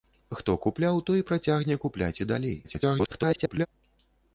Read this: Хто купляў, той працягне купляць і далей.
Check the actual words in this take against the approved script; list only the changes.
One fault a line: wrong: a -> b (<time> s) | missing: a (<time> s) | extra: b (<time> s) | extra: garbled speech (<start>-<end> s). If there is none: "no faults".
extra: garbled speech (2.6-3.7 s)